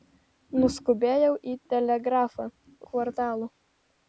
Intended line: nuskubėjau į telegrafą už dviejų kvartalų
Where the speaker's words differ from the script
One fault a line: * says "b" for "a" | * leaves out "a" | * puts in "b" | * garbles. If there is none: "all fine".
* leaves out "už dviejų"